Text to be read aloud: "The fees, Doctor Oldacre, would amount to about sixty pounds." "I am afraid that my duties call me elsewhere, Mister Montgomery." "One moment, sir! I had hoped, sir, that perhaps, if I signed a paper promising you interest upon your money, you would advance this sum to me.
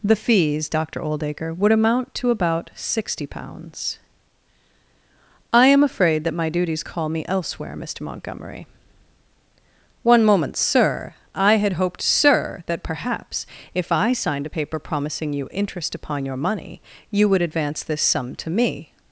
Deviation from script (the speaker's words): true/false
false